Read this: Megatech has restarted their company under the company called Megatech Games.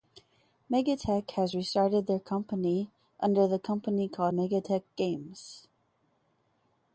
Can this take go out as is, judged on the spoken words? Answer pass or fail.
pass